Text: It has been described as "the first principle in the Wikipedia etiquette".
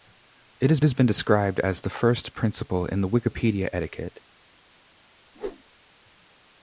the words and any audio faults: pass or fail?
fail